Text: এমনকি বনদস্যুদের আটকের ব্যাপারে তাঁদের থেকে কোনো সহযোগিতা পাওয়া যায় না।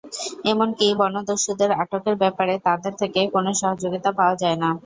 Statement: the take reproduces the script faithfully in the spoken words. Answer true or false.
true